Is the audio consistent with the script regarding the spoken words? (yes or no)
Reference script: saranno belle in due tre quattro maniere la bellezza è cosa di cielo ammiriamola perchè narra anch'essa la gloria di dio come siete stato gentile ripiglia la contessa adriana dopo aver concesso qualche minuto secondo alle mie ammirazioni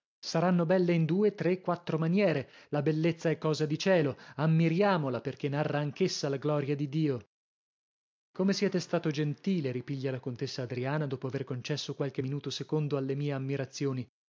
yes